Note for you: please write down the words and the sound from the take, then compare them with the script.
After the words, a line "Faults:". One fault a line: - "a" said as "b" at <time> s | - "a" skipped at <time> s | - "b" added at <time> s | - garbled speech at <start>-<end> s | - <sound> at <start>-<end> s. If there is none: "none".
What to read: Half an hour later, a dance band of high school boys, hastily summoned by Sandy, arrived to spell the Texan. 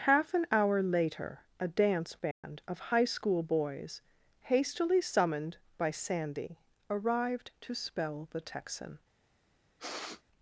Half an hour later, a dance band of high school boys, hastily summoned by Sandy, arrived to spell the Texan.
Faults:
- dropout at 2.3-2.4 s
- sniff at 9.8-10.2 s